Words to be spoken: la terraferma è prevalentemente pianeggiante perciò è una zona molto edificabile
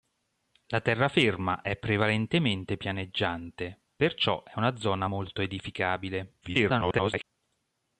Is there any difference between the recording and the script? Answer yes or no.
yes